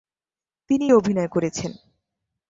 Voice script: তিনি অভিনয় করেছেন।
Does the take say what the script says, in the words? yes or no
yes